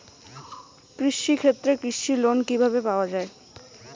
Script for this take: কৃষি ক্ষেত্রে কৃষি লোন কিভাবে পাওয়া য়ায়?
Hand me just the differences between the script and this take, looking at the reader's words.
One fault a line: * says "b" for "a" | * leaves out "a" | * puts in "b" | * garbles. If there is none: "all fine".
all fine